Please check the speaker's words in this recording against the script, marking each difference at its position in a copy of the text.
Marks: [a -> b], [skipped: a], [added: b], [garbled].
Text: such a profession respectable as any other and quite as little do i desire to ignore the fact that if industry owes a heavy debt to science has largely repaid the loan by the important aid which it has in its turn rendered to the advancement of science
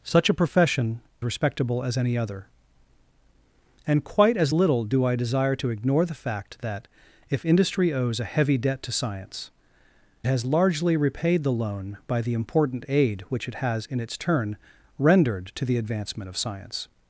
such a profession respectable as any other and quite as little do i desire to ignore the fact that if industry owes a heavy debt to science has largely repaid the loan by the important aid which it has in its turn rendered to the advancement of science